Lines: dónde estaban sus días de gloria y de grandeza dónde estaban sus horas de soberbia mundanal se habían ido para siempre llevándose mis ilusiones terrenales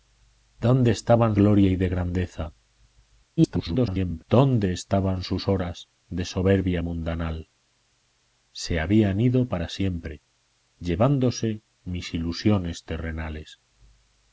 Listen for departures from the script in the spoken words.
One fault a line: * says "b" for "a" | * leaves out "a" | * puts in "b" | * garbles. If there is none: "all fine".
* leaves out "sus días de"
* garbles